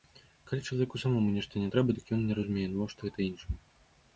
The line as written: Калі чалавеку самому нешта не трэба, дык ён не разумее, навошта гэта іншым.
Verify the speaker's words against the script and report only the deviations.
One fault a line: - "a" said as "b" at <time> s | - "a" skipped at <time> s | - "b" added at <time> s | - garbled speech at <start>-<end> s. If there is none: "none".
none